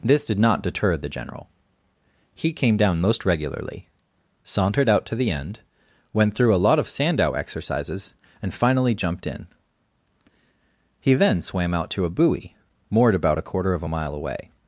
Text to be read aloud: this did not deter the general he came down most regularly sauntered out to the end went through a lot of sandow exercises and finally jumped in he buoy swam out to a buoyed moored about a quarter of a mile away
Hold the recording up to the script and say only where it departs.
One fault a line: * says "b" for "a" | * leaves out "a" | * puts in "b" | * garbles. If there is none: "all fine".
* says "then" for "buoy"
* says "buoy" for "buoyed"